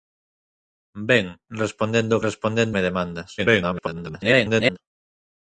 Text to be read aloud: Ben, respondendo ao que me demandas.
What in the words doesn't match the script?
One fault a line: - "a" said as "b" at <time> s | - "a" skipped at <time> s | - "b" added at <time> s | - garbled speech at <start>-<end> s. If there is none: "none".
- "que" said as "respondendo" at 2.3 s
- garbled speech at 3.4-4.8 s